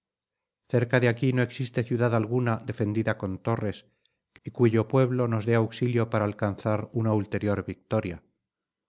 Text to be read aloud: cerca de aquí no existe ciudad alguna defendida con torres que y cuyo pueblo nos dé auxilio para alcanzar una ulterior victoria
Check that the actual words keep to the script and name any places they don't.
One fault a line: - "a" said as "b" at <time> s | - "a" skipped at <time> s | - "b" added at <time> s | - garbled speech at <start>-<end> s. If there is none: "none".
none